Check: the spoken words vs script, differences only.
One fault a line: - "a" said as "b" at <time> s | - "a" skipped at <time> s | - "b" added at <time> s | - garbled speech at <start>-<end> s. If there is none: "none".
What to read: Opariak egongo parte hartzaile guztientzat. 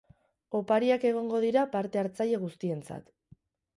- "dira" added at 1.4 s